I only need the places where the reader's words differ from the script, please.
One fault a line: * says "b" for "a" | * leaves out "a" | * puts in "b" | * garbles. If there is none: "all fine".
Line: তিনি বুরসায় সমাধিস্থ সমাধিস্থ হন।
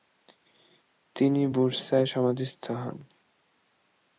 * leaves out "সমাধিস্থ"